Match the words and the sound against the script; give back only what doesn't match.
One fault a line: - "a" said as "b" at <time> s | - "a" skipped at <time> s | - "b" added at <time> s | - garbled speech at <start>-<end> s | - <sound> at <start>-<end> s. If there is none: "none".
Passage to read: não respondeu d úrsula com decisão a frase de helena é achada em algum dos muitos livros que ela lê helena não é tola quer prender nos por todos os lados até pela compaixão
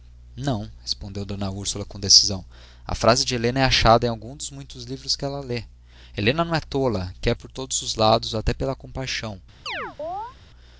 - "prender nos" skipped at 7.3 s
- chirp at 9.7-10.4 s